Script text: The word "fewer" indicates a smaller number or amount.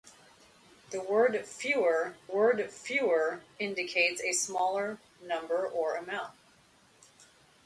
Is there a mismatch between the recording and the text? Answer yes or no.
yes